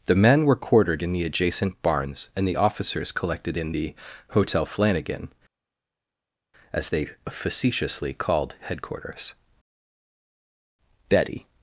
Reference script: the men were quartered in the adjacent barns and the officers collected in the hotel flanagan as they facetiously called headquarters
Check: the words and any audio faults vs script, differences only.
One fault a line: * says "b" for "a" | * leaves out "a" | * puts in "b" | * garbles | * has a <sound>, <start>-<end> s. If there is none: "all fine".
* puts in "betty"